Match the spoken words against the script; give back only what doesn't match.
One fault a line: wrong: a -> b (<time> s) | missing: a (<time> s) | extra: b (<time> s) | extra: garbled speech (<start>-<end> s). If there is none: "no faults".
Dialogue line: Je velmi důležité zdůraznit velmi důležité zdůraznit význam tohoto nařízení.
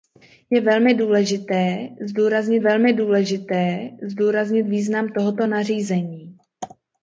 no faults